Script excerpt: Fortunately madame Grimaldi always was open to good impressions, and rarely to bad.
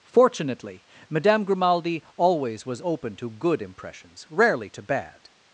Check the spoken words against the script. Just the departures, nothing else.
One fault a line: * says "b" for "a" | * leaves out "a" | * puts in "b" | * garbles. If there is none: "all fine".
* leaves out "and"